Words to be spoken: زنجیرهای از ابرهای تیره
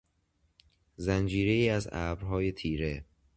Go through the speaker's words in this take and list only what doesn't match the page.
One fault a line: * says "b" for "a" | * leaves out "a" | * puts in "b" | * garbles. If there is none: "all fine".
all fine